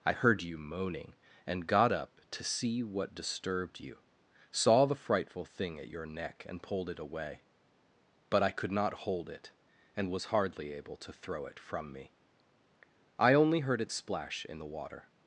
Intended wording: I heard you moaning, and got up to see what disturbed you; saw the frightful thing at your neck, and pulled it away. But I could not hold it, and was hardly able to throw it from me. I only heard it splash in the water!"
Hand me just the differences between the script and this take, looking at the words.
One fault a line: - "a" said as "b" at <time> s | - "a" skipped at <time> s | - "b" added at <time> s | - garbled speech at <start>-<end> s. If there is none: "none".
none